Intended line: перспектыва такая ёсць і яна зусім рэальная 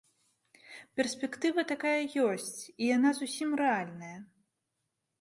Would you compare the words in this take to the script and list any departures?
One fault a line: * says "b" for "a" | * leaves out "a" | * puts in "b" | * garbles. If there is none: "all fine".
all fine